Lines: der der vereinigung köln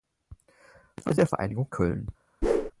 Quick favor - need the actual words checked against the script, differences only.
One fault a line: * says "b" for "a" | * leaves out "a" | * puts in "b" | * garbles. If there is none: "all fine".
all fine